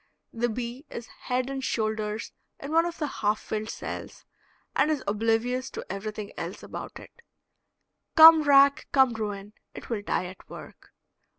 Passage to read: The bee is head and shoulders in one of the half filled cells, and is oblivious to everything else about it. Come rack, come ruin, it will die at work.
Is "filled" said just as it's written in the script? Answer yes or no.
yes